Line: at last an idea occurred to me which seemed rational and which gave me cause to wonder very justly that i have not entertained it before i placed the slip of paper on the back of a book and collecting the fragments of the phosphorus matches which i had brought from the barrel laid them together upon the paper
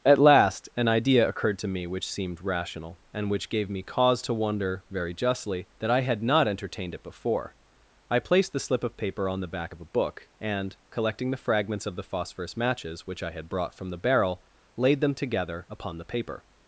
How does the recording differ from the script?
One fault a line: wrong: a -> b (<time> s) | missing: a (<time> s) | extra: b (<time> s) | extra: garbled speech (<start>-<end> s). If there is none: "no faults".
wrong: have -> had (6.0 s)